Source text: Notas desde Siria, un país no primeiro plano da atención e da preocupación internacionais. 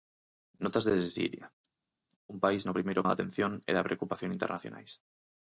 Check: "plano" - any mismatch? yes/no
yes